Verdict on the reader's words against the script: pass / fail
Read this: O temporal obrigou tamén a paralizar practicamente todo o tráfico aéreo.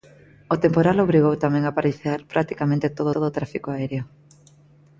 fail